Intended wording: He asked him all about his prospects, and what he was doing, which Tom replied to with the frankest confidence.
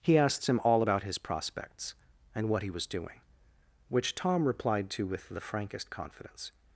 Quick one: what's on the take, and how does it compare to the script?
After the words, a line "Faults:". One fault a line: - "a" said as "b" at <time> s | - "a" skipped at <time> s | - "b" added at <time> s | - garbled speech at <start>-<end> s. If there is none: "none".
He asked him all about his prospects, and what he was doing, which Tom replied to with the frankest confidence.
Faults:
none